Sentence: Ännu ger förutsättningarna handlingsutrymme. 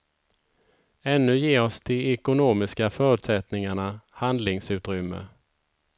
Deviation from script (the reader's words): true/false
true